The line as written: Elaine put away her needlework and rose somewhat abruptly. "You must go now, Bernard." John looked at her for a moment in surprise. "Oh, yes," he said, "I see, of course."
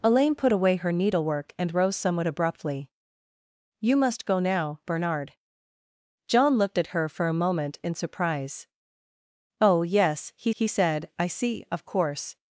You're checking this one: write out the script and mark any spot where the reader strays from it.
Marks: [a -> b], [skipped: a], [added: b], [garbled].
Elaine put away her needlework and rose somewhat abruptly. "You must go now, Bernard." John looked at her for a moment in surprise. "Oh, yes," he [added: he] said, "I see, of course."